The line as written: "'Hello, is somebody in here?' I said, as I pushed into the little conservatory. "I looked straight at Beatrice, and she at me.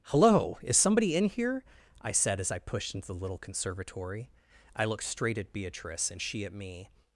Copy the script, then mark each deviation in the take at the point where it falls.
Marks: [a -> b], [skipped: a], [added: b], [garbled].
"'Hello, is somebody in here?' I said, as I pushed into the little conservatory. "I looked straight at Beatrice, and she at me.